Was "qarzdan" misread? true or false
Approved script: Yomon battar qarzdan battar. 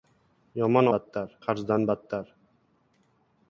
false